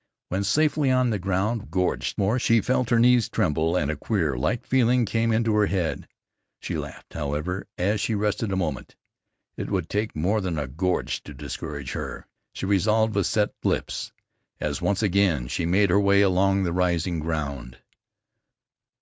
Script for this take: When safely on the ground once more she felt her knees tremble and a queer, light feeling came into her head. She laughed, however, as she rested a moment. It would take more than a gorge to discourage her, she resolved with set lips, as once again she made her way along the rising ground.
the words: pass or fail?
fail